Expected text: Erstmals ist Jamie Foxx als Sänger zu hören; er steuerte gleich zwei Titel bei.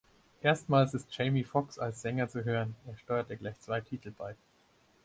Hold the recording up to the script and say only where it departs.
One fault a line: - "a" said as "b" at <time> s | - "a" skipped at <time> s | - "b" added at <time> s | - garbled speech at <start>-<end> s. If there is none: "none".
none